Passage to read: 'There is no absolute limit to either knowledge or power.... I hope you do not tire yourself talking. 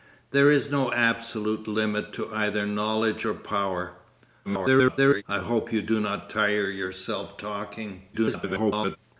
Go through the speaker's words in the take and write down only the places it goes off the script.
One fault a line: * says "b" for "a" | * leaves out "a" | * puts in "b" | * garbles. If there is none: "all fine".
* garbles
* garbles